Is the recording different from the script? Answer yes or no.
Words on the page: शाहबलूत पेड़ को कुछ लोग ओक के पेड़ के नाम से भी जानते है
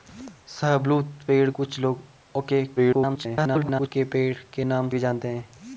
yes